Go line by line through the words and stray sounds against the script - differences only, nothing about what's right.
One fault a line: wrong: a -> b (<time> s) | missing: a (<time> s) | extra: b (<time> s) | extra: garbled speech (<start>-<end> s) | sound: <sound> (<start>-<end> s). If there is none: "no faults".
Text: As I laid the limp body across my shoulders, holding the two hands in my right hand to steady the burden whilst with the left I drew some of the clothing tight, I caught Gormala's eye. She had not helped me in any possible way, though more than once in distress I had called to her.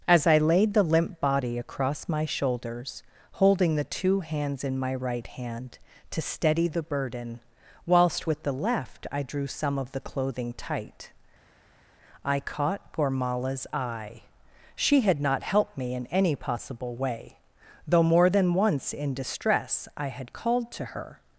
no faults